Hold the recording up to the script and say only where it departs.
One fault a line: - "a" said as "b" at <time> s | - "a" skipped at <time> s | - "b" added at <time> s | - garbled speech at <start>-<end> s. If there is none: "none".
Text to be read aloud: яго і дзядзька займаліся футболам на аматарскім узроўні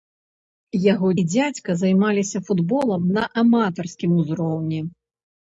none